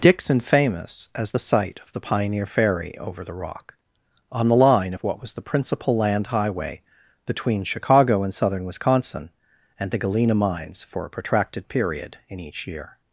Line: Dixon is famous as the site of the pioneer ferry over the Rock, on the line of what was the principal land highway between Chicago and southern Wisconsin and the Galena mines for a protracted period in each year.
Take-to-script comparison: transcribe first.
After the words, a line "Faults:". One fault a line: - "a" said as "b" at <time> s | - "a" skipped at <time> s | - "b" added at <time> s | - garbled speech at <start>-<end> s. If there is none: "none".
Dixon famous as the site of the pioneer ferry over the Rock, on the line of what was the principal land highway between Chicago and southern Wisconsin and the Galena mines for a protracted period in each year.
Faults:
- "is" skipped at 0.4 s